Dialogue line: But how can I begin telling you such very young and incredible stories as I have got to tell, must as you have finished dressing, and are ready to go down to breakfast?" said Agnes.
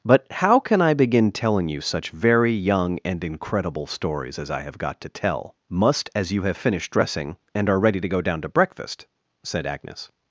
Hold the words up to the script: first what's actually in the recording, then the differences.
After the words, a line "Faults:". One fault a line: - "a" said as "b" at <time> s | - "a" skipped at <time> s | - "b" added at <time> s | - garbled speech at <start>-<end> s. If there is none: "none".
But how can I begin telling you such very young and incredible stories as I have got to tell, must as you have finished dressing, and are ready to go down to breakfast?" said Agnes.
Faults:
none